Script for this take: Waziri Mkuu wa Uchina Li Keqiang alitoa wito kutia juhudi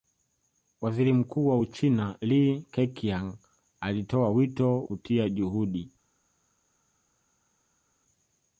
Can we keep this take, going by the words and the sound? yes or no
yes